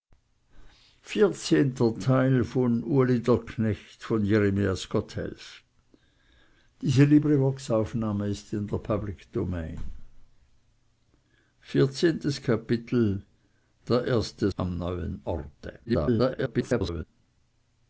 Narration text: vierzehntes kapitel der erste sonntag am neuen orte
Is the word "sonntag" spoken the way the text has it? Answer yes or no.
no